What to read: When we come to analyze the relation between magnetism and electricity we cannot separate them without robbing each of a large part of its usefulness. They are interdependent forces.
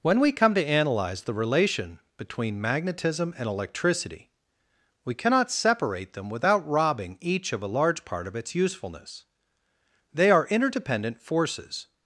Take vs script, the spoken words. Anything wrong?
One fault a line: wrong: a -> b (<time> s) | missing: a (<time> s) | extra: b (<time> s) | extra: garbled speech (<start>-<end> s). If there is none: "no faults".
no faults